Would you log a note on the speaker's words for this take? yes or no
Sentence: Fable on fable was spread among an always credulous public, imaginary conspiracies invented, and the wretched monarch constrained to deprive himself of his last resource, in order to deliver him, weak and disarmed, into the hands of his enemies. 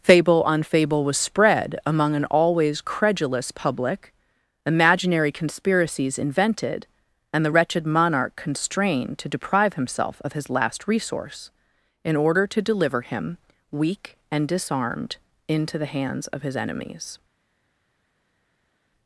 no